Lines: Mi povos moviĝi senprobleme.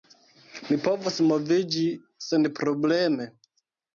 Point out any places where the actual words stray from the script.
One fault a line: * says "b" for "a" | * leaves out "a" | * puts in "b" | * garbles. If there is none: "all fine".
all fine